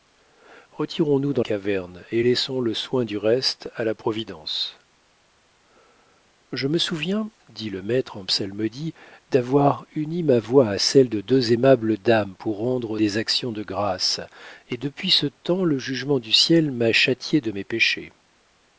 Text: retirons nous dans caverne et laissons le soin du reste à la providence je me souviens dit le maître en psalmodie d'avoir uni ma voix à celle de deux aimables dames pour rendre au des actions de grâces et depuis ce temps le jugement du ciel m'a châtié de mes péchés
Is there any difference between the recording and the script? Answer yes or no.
no